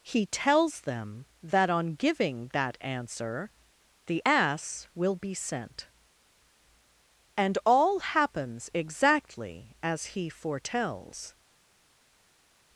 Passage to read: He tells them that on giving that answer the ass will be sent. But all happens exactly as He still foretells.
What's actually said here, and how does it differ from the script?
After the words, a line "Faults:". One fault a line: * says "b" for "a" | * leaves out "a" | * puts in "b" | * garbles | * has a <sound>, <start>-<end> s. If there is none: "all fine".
He tells them that on giving that answer the ass will be sent. And all happens exactly as He foretells.
Faults:
* says "And" for "But"
* leaves out "still"